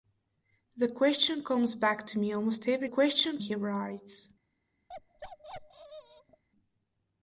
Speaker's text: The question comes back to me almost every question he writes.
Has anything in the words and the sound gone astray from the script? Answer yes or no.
yes